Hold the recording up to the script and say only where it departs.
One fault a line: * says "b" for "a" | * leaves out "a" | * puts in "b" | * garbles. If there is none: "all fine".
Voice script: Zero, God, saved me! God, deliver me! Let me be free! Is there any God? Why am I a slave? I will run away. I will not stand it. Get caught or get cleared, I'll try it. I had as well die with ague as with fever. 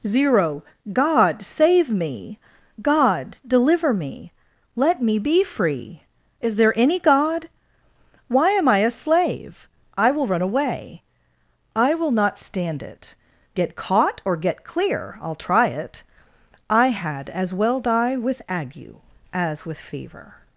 * says "save" for "saved"
* says "clear" for "cleared"